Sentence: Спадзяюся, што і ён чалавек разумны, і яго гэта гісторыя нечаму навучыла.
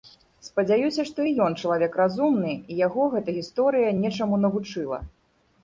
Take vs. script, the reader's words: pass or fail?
pass